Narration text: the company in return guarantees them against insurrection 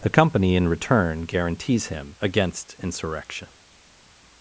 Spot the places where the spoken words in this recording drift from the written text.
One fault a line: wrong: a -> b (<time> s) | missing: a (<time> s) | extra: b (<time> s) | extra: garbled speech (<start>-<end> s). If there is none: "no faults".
wrong: them -> him (1.9 s)